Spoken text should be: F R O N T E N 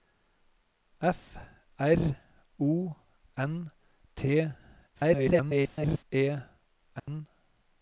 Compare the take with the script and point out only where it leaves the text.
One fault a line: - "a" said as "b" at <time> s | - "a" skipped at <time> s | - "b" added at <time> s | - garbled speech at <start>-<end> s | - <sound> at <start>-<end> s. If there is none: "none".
- garbled speech at 4.9-6.0 s
- dropout at 7.0-7.1 s